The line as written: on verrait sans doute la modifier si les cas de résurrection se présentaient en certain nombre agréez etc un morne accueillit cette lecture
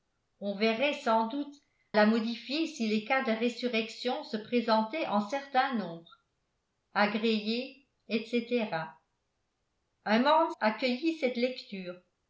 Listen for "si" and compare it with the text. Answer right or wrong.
right